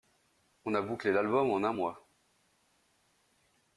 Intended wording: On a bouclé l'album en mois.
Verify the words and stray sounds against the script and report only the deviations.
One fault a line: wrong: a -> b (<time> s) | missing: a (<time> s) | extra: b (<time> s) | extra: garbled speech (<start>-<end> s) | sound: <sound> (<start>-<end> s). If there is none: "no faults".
extra: un (1.6 s)